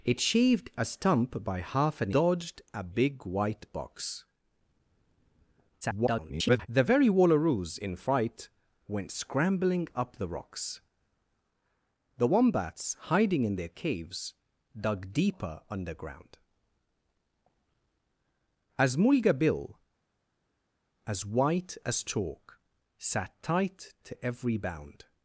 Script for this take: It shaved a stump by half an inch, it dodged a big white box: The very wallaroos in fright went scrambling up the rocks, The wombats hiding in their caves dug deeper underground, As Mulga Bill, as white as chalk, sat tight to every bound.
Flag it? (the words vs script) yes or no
yes